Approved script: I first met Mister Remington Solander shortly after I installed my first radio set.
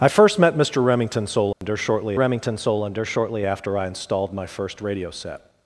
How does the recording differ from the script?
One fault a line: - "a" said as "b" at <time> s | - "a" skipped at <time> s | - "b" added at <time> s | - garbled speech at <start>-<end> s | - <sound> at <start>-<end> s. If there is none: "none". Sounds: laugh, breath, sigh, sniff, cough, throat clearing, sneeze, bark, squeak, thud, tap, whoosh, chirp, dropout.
- dropout at 1.5-1.6 s
- "Remington Solander shortly" added at 2.1 s